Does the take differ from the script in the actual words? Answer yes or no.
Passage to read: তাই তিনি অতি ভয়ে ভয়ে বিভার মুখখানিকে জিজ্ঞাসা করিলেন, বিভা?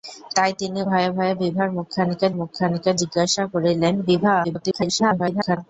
yes